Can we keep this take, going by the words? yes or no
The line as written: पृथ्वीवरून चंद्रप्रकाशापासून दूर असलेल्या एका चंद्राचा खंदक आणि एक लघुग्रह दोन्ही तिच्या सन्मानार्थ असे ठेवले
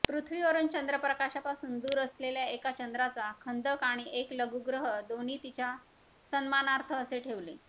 yes